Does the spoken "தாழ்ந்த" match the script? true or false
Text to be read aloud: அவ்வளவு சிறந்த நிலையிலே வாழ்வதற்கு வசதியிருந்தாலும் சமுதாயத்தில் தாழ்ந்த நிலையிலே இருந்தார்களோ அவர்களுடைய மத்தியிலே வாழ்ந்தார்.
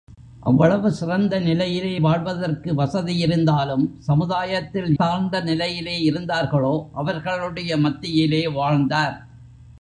true